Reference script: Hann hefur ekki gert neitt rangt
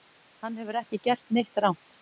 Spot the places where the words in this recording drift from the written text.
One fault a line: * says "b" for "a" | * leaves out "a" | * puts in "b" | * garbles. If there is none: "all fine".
all fine